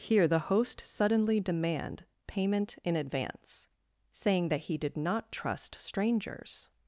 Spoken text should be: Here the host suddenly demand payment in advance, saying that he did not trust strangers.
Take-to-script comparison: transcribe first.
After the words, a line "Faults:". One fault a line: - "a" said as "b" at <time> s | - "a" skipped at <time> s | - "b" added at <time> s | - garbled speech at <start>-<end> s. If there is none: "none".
Here the host suddenly demand payment in advance, saying that he did not trust strangers.
Faults:
none